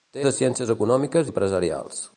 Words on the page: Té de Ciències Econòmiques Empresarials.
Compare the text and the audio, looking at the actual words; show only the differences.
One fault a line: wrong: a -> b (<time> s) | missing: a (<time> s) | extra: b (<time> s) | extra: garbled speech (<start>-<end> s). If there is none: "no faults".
no faults